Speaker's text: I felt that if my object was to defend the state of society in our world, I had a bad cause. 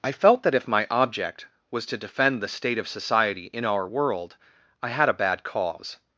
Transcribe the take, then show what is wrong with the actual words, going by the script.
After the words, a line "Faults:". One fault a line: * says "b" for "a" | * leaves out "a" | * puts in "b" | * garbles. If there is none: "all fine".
I felt that if my object was to defend the state of society in our world, I had a bad cause.
Faults:
all fine